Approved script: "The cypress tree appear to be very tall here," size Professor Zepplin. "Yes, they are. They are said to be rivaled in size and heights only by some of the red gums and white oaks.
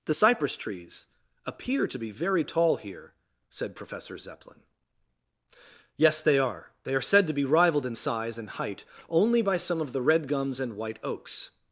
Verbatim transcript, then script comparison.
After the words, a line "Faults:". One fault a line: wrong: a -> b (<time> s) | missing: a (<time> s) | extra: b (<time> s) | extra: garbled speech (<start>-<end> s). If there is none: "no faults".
"The cypress trees appear to be very tall here," said Professor Zepplin. "Yes, they are. They are said to be rivaled in size and height only by some of the red gums and white oaks.
Faults:
wrong: tree -> trees (0.6 s)
wrong: size -> said (3.5 s)
wrong: heights -> height (8.5 s)